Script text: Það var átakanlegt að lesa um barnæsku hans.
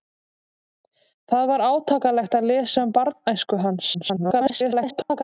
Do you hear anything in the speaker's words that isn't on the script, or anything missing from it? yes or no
yes